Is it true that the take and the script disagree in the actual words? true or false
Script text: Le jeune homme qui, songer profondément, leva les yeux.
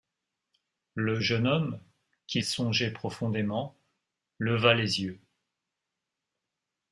false